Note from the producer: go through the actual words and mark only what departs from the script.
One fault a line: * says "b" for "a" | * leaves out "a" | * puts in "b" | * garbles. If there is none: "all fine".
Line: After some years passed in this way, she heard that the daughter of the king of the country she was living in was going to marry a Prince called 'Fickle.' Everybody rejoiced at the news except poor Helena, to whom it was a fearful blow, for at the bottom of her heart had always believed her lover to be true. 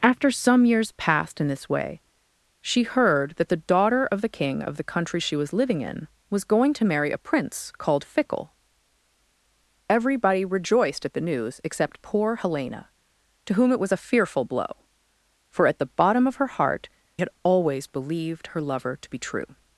all fine